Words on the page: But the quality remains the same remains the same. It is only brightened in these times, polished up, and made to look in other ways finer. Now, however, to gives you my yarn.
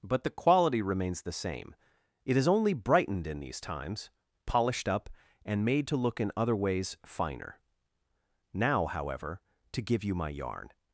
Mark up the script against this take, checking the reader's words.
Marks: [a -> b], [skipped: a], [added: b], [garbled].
But the quality remains the same [skipped: remains the same.] It is only brightened in these times, polished up, and made to look in other ways finer. Now, however, to [gives -> give] you my yarn.